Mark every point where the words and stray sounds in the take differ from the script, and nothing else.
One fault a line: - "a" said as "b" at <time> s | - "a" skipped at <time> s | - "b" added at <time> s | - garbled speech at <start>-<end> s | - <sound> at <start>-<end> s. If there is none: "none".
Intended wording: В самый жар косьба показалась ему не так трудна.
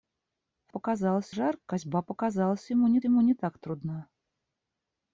- "самый" said as "показалась" at 0.7 s
- "ему не" added at 3.0 s